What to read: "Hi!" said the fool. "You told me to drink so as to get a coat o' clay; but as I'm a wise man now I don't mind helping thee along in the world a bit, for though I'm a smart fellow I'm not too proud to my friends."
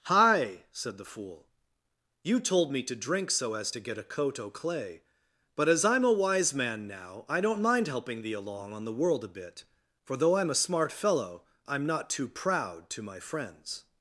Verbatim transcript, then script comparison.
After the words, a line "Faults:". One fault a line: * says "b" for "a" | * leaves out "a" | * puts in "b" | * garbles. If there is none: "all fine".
"Hi!" said the fool. "You told me to drink so as to get a coat o' clay; but as I'm a wise man now I don't mind helping thee along on the world a bit, for though I'm a smart fellow I'm not too proud to my friends."
Faults:
* says "on" for "in"